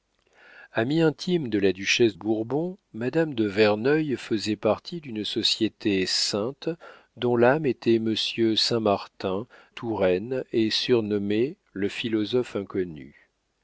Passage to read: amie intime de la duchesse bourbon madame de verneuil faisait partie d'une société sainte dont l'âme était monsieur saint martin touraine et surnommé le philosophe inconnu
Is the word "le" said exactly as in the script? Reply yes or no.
yes